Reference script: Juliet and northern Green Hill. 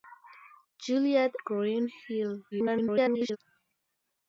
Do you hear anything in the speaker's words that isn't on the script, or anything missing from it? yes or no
yes